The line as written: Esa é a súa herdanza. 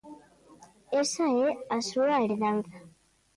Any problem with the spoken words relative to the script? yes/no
no